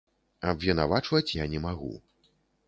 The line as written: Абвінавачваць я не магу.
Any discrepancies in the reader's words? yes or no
no